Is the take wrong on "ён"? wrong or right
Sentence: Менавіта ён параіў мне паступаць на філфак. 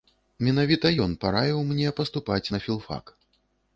right